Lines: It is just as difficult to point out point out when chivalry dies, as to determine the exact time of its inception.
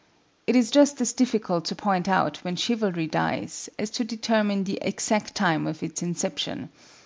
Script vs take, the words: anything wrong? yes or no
yes